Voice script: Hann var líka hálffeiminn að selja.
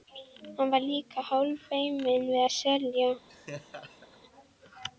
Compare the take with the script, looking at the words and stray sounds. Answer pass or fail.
fail